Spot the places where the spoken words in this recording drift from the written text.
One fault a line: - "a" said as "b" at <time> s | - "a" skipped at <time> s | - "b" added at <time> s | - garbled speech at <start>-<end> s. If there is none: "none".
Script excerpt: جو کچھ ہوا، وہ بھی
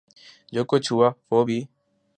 none